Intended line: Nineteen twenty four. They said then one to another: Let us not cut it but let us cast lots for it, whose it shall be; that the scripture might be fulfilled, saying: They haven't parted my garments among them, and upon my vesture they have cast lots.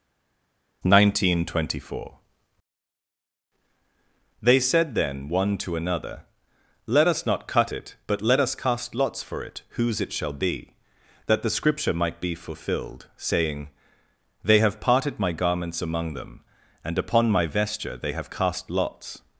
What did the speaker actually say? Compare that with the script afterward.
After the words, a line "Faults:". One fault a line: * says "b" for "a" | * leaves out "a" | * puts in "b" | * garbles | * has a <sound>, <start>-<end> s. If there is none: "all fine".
Nineteen twenty four. They said then one to another: Let us not cut it but let us cast lots for it, whose it shall be; that the scripture might be fulfilled, saying: They have parted my garments among them, and upon my vesture they have cast lots.
Faults:
* says "have" for "haven't"